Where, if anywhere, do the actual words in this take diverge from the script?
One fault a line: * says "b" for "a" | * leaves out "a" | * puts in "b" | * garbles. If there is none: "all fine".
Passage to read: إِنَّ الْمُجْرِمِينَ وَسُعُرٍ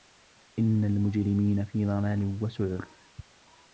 * puts in "فِي ضَلالٍ"